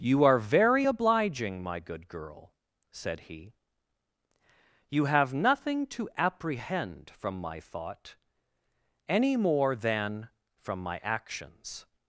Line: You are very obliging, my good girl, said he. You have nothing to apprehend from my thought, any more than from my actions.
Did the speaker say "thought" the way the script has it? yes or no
yes